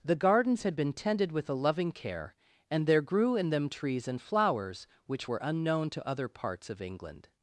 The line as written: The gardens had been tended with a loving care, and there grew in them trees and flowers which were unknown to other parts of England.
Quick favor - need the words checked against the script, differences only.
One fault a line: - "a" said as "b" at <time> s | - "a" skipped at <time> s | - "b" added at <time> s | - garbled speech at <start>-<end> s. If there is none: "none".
none